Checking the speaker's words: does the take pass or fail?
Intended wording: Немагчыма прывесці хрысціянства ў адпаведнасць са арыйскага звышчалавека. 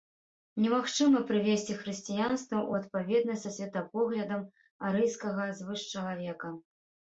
fail